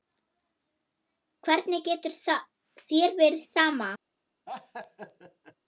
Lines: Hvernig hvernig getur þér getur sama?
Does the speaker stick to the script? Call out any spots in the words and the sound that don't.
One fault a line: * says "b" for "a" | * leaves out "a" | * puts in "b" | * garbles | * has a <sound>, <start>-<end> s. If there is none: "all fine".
* leaves out "hvernig"
* says "verið" for "getur"
* has a laugh, 4.5-5.6 s